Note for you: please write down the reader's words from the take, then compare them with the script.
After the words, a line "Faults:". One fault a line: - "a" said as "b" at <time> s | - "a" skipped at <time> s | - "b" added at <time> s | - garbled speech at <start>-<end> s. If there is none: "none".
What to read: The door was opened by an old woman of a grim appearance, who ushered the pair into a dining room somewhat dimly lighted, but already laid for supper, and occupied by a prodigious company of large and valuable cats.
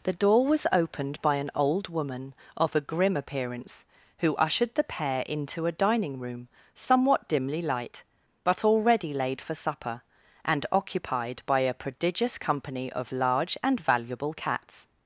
The door was opened by an old woman of a grim appearance, who ushered the pair into a dining room somewhat dimly light, but already laid for supper, and occupied by a prodigious company of large and valuable cats.
Faults:
- "lighted" said as "light" at 7.6 s